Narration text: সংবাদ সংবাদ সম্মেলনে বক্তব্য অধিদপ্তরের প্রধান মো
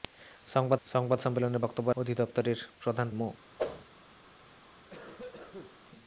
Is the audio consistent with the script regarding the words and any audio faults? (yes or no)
no